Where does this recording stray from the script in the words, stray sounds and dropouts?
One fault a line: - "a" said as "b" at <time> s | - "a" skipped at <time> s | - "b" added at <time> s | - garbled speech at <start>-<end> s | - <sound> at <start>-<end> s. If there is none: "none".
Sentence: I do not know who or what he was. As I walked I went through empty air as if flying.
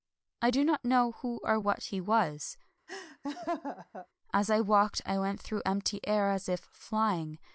- laugh at 2.9-4.1 s